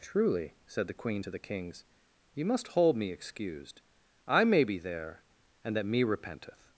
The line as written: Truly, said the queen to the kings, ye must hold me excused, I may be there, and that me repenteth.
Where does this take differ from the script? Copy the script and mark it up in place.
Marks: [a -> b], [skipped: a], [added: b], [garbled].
Truly, said the queen to the kings, ye must hold me excused, I may be there, and that me repenteth.